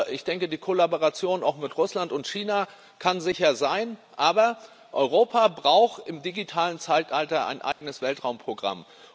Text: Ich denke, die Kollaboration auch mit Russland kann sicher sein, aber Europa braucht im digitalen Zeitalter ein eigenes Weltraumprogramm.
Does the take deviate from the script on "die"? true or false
false